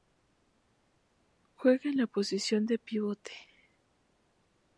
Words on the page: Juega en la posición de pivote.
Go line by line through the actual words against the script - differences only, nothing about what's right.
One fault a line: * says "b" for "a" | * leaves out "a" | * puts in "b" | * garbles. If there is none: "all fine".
all fine